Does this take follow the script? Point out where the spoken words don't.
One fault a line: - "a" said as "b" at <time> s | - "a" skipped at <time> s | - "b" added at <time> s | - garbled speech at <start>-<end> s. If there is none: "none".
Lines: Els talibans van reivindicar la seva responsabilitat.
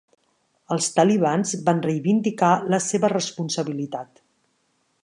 none